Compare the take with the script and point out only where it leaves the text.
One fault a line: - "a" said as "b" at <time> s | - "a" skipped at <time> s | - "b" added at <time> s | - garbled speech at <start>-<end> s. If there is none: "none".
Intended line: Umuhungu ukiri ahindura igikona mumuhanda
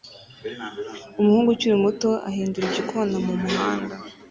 - "muto" added at 1.8 s